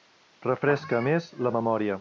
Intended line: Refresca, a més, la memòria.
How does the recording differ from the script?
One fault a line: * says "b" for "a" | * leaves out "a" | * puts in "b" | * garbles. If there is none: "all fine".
all fine